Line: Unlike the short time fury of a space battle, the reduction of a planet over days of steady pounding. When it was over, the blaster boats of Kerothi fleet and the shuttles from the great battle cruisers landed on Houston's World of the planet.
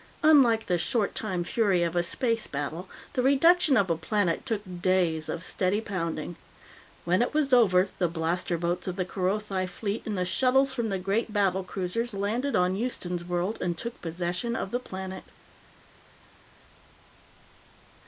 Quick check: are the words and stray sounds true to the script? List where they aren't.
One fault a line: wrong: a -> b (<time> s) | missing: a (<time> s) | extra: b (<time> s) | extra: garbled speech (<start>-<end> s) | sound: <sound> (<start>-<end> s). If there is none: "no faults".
wrong: over -> took (4.5 s)
extra: the (8.9 s)
extra: and took possession (13.6 s)